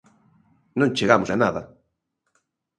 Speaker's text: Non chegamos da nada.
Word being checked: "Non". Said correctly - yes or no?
yes